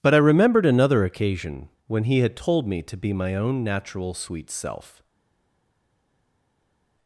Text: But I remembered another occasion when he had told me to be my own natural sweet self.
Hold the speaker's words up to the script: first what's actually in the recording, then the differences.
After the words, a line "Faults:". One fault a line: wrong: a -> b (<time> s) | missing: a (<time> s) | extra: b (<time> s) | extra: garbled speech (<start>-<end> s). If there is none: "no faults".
But I remembered another occasion when he had told me to be my own natural sweet self.
Faults:
no faults